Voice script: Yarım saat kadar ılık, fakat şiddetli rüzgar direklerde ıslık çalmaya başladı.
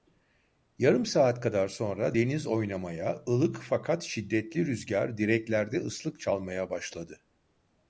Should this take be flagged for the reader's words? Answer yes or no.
yes